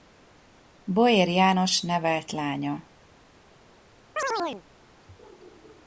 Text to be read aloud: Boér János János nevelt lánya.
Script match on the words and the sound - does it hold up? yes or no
no